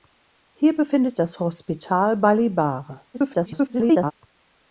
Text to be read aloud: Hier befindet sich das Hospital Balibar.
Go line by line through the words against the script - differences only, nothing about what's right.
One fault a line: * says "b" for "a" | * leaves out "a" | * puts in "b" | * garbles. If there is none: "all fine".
* leaves out "sich"
* garbles